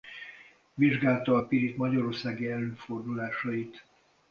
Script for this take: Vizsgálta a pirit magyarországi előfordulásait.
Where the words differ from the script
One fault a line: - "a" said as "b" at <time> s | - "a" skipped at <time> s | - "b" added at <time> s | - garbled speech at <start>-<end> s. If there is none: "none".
none